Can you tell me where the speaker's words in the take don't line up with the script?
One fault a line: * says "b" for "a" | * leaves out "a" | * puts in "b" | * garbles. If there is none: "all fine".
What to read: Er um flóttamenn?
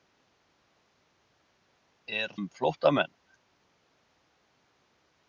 all fine